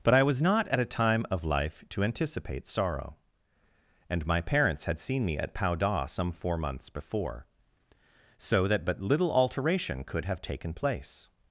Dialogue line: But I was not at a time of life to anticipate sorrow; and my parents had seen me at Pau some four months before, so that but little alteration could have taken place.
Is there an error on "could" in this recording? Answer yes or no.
no